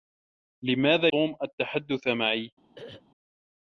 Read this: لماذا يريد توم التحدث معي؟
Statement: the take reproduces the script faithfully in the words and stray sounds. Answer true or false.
false